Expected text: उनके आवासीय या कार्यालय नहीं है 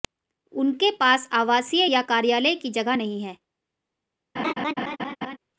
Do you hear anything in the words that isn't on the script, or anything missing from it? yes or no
yes